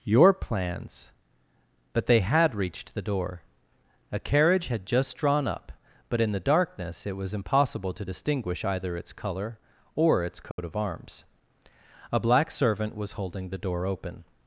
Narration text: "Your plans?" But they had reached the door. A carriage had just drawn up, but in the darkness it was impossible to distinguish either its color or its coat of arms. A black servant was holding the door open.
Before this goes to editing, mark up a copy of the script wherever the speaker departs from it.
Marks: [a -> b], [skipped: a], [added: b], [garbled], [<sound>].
"Your plans?" But they had reached the door. A carriage had just drawn up, but in the darkness it was impossible to distinguish either its color or its coat [dropout] of arms. A black servant was holding the door open.